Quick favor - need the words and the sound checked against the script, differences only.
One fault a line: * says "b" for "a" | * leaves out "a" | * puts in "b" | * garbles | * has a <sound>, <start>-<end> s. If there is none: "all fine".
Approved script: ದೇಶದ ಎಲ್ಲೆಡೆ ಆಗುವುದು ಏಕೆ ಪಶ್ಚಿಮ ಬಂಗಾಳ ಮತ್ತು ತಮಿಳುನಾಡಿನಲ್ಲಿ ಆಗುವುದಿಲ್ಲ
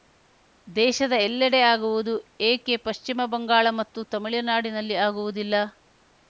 all fine